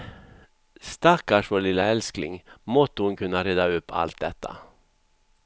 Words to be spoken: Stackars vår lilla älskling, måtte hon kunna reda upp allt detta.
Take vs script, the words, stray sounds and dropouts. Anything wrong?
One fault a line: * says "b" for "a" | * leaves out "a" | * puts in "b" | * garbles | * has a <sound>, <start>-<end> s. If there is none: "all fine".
all fine